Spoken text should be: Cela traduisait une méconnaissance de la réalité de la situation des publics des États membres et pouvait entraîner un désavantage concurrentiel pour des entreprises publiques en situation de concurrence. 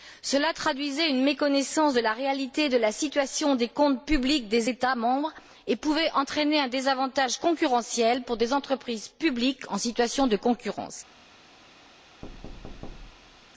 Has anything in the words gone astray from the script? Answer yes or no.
yes